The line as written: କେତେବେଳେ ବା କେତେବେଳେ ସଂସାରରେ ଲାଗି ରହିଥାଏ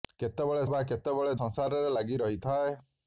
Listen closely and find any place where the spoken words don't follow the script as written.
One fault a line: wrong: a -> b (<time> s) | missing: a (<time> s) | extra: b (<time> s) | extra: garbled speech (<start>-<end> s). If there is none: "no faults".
no faults